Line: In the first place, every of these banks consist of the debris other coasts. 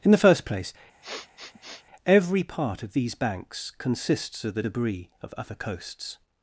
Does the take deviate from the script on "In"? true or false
false